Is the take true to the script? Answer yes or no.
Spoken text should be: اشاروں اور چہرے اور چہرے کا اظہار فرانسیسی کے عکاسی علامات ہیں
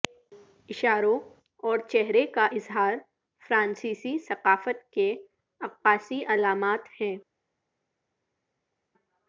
no